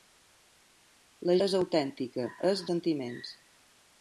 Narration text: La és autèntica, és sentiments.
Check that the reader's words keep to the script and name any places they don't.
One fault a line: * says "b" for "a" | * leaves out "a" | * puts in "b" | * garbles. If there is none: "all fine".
all fine